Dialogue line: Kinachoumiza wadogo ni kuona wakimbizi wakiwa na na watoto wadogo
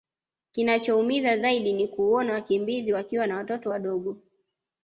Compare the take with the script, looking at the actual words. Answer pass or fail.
fail